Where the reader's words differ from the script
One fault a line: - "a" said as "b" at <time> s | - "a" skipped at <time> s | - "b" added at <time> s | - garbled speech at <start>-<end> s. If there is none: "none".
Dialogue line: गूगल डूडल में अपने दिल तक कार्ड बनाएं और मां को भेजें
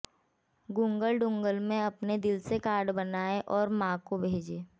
- "तक" said as "से" at 2.4 s